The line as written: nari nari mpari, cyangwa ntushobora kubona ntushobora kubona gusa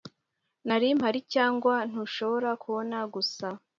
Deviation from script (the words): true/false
true